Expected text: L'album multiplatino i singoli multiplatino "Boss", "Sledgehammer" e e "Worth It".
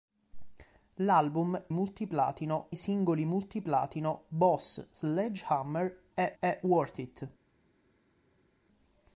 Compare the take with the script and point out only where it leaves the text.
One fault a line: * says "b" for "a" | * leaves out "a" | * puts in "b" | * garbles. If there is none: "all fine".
all fine